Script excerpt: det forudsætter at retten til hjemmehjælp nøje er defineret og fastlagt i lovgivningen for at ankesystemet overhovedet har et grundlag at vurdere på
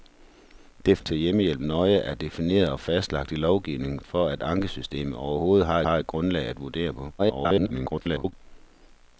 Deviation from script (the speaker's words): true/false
true